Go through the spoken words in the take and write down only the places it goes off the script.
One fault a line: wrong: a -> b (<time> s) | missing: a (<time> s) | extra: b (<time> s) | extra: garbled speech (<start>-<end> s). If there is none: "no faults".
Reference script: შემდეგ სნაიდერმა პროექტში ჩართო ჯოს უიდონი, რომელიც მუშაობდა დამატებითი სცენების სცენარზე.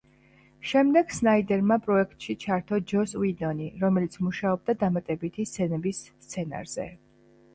no faults